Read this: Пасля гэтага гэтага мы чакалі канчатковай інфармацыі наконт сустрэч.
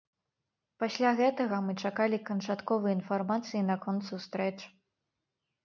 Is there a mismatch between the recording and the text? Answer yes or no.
yes